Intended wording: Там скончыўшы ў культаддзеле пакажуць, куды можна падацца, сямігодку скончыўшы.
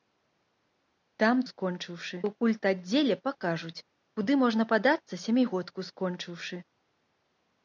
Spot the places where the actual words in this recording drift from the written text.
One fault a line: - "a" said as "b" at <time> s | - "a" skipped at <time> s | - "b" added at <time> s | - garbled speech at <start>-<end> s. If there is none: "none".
none